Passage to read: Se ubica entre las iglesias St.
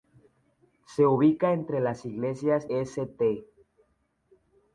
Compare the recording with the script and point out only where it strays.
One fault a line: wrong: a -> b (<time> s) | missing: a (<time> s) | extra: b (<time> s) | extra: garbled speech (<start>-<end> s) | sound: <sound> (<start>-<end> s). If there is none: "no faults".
no faults